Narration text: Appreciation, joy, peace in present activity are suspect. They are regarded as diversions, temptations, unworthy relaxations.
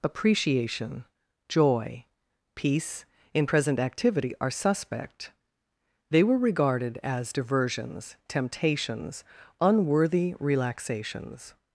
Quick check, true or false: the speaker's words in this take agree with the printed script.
false